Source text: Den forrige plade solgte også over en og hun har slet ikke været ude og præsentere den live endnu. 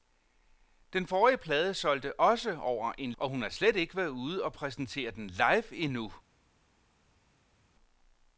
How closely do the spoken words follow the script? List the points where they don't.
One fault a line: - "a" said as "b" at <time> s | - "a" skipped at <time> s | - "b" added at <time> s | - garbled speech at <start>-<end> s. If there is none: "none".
none